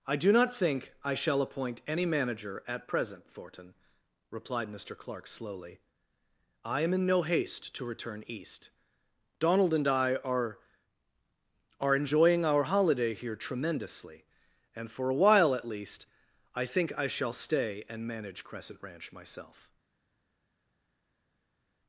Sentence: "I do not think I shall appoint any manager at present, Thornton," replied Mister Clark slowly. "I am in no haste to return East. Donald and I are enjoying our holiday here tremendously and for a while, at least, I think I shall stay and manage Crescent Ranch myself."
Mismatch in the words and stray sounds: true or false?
true